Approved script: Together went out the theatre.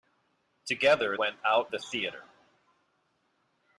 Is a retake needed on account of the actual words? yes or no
no